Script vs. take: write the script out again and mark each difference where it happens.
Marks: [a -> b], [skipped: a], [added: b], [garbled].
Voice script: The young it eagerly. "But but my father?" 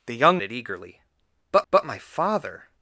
The young it eagerly. "But but my father?"